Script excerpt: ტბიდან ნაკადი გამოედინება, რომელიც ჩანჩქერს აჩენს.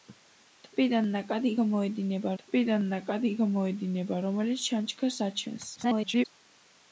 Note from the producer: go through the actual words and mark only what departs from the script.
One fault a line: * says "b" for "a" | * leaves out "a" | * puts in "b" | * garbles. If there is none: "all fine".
* puts in "ტბიდან ნაკადი გამოედინება"
* garbles